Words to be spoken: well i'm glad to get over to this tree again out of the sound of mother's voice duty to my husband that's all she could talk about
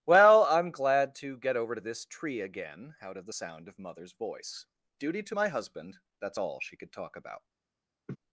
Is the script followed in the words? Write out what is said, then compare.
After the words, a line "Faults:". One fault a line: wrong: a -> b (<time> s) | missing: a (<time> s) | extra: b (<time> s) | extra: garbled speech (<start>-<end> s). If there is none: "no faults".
well i'm glad to get over to this tree again out of the sound of mother's voice duty to my husband that's all she could talk about
Faults:
no faults